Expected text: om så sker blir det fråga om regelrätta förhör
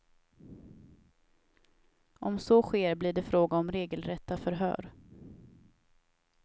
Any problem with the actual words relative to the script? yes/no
no